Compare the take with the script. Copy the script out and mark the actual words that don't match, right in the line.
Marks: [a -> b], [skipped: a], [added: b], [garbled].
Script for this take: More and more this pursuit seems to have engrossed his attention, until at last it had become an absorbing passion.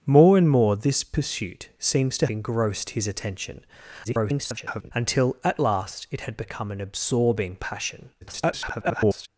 More and more this pursuit seems to [skipped: have] engrossed his attention, [garbled] until at last it had become an absorbing passion. [garbled]